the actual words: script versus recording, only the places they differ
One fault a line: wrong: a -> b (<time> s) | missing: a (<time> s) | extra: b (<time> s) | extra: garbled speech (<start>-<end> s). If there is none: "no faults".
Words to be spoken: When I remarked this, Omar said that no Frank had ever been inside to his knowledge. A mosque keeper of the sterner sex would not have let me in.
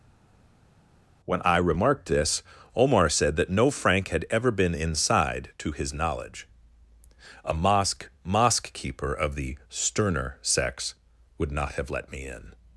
extra: mosque (8.2 s)